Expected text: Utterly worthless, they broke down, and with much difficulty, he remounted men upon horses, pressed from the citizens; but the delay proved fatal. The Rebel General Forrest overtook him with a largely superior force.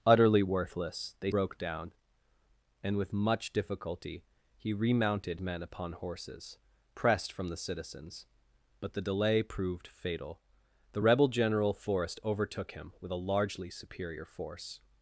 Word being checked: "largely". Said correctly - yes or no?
yes